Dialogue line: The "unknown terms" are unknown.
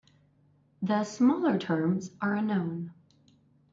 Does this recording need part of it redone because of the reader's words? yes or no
yes